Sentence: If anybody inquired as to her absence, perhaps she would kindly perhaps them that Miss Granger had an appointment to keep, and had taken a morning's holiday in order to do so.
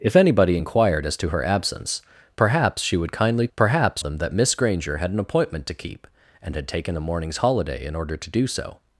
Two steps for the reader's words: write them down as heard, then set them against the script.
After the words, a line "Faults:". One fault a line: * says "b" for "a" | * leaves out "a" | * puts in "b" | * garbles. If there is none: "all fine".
If anybody inquired as to her absence, perhaps she would kindly perhaps them that Miss Granger had an appointment to keep, and had taken a morning's holiday in order to do so.
Faults:
all fine